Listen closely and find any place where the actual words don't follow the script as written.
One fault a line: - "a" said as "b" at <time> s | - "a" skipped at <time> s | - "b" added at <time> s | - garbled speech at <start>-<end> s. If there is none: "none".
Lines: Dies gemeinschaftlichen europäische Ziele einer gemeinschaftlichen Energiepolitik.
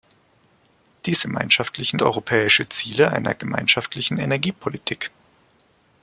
none